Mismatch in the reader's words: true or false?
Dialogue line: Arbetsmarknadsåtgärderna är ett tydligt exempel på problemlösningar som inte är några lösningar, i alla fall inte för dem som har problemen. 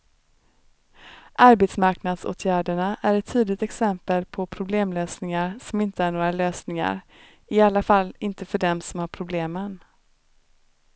false